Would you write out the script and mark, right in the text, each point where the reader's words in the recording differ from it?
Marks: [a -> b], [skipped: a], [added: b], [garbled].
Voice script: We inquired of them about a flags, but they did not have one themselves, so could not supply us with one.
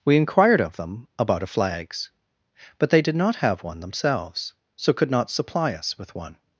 We inquired of them about a flags, but they did not have one themselves, so could not supply us with one.